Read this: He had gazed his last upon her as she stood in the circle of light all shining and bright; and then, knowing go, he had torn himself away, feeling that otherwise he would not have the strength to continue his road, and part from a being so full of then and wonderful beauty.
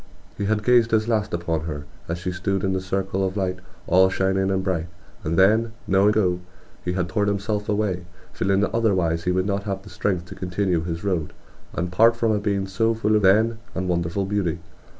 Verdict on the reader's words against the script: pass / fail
pass